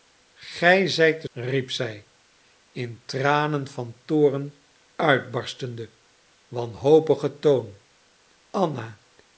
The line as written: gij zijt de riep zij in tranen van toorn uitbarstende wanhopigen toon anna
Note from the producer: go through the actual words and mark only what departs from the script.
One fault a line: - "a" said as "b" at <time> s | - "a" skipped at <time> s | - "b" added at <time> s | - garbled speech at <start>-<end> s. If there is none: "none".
none